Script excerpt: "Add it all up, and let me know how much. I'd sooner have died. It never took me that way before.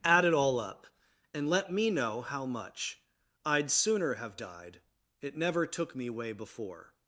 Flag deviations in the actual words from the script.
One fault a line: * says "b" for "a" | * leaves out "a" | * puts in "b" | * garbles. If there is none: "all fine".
* leaves out "that"